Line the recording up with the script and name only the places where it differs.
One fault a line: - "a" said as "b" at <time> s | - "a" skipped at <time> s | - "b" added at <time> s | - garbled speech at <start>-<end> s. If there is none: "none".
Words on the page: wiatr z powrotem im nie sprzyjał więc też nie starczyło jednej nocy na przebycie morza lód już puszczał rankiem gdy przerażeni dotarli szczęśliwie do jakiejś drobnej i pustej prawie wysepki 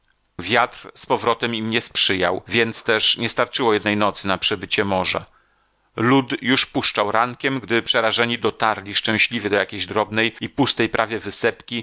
none